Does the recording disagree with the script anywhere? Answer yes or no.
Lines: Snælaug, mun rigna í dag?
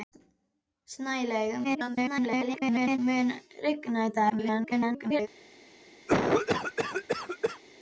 yes